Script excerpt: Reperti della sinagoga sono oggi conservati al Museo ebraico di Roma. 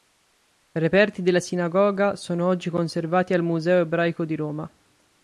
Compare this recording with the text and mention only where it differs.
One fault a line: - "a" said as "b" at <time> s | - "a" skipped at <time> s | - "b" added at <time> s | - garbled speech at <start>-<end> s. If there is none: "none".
none